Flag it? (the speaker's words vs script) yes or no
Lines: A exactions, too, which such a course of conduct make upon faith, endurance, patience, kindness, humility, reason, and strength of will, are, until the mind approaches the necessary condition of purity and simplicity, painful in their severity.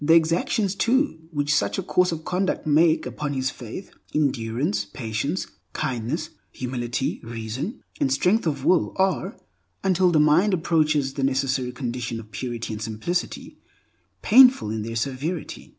yes